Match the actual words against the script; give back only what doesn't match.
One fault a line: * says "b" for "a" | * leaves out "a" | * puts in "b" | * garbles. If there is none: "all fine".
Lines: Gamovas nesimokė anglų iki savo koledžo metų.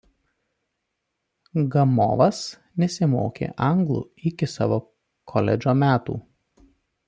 all fine